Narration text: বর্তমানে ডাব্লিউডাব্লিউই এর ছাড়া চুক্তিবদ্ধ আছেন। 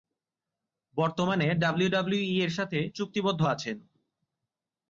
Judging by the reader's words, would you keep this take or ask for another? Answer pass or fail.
fail